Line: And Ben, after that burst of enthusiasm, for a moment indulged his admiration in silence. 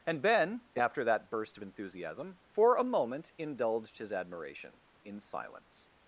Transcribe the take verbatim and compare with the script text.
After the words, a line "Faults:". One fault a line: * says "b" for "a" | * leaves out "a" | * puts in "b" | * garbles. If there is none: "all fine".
And Ben, after that burst of enthusiasm, for a moment indulged his admiration in silence.
Faults:
all fine